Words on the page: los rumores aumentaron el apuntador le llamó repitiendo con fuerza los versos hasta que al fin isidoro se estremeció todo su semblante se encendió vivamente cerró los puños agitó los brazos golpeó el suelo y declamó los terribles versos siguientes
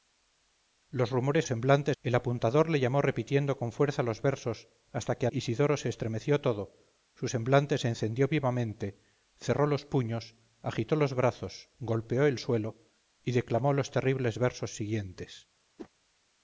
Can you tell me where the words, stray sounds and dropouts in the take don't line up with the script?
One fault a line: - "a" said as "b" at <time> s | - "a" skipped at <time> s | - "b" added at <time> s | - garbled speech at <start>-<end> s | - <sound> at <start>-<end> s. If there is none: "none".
- "aumentaron" said as "semblante" at 1.4 s
- "al fin" skipped at 5.3 s
- whoosh at 15.8-15.9 s